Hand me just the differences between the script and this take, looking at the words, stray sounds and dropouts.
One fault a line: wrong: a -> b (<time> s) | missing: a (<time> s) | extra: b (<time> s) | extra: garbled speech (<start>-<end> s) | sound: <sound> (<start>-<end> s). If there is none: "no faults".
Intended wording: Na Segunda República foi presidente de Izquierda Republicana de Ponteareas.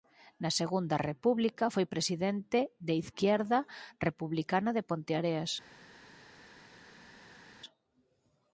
no faults